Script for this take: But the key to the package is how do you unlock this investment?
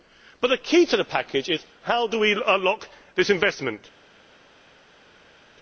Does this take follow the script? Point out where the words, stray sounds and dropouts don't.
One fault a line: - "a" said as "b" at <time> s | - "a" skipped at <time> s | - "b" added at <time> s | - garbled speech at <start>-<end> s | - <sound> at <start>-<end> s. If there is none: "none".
- "you" said as "we" at 2.2 s